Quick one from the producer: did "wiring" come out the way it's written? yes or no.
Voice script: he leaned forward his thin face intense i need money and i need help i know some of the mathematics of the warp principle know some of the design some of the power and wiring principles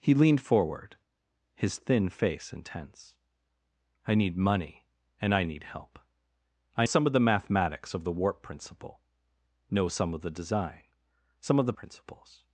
no